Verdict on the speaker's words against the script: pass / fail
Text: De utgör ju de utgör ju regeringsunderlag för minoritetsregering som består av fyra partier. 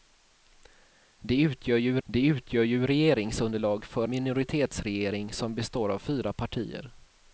pass